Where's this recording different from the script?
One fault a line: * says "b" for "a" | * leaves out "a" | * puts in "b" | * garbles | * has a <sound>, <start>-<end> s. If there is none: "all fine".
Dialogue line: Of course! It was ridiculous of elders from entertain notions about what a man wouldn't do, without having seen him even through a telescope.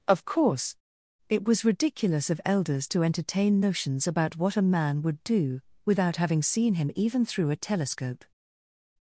* says "to" for "from"
* says "would" for "wouldn't"